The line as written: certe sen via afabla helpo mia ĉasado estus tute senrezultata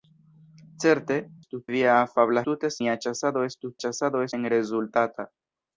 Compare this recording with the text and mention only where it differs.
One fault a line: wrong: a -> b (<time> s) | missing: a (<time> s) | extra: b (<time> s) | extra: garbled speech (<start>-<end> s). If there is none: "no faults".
wrong: sen -> estus (1.4 s)
wrong: helpo -> tute (2.5 s)
wrong: tute -> ĉasado (3.8 s)